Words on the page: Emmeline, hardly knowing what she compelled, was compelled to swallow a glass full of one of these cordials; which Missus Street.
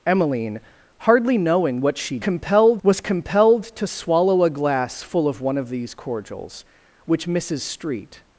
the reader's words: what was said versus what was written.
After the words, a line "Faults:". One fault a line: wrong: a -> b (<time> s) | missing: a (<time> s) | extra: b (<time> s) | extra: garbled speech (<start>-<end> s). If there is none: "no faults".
Emmeline, hardly knowing what she compelled, was compelled to swallow a glass full of one of these cordials; which Missus Street.
Faults:
no faults